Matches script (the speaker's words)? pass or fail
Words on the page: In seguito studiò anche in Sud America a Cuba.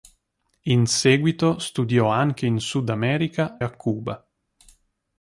pass